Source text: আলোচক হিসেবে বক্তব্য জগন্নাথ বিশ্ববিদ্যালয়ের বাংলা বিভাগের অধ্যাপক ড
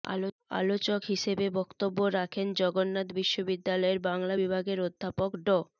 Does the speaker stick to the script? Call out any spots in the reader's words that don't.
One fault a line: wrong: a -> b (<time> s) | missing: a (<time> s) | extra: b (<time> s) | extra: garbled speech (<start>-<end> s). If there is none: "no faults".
extra: রাখেন (2.2 s)